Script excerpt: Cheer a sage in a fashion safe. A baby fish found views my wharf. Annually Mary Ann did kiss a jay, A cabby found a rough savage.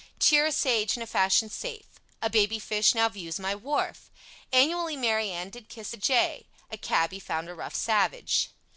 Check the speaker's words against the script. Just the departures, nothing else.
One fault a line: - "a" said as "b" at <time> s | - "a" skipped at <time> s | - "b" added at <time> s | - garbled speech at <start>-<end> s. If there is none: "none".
- "found" said as "now" at 2.9 s